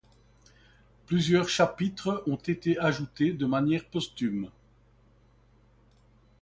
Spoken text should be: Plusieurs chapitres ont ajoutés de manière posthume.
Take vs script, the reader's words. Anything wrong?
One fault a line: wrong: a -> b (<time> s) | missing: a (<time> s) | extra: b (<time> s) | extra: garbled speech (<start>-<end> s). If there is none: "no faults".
extra: été (2.4 s)